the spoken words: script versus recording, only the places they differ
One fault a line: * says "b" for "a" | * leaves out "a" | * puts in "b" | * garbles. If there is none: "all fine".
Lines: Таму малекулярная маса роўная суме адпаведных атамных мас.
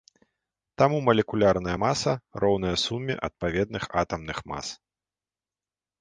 all fine